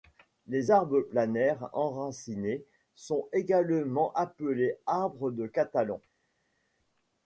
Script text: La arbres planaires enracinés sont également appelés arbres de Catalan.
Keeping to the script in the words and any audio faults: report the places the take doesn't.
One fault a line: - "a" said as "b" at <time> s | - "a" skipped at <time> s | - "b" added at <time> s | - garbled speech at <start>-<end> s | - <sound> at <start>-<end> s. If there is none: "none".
- "La" said as "Les" at 0.5 s